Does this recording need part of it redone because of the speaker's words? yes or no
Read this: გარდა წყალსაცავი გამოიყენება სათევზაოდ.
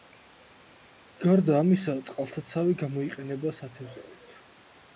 yes